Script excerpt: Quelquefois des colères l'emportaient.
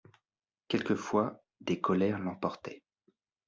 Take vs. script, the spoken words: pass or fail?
pass